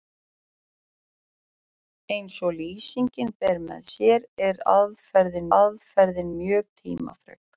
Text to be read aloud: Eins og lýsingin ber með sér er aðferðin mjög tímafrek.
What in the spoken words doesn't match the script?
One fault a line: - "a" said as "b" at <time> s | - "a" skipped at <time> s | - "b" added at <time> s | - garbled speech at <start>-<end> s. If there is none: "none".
- "aðferðin" added at 5.6 s